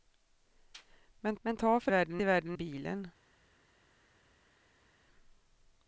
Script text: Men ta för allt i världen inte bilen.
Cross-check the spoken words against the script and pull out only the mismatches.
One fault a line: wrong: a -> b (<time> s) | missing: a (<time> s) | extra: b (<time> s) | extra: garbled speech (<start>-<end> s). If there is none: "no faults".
extra: men (1.4 s)
wrong: allt -> världen (1.9 s)
missing: inte (2.6 s)